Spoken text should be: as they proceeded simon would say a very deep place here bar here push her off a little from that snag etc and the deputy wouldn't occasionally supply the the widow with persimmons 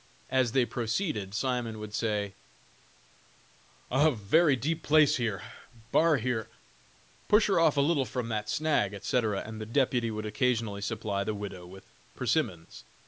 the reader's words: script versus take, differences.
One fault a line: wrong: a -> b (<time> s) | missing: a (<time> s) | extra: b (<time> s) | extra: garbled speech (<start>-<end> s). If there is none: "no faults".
wrong: wouldn't -> would (10.1 s)
missing: the (11.3 s)